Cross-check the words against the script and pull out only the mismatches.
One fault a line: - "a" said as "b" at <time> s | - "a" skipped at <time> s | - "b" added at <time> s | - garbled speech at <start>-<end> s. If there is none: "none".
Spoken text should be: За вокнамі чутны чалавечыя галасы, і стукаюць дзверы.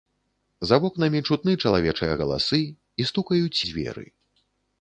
none